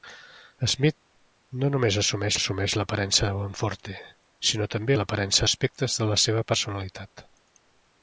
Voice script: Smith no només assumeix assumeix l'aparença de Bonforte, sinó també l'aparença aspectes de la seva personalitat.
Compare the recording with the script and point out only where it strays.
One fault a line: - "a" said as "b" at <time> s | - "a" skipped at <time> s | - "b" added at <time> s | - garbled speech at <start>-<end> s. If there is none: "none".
none